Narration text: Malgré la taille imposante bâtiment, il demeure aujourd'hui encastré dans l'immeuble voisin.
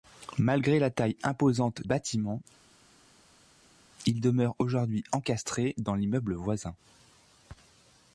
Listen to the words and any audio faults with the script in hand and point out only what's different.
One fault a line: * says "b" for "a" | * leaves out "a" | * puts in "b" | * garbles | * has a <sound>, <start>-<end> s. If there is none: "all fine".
all fine